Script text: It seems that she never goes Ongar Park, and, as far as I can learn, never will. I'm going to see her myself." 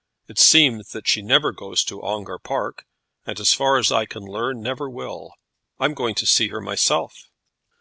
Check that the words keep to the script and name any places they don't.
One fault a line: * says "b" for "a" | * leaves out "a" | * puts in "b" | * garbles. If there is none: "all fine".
* puts in "to"